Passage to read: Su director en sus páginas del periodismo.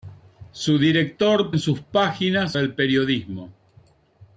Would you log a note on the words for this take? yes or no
no